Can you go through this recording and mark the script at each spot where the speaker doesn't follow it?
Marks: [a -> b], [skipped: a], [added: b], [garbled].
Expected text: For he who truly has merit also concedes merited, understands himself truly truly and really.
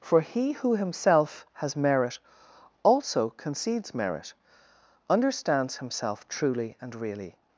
For he who [truly -> himself] has merit also concedes [merited, -> merit] understands himself truly [skipped: truly] and really.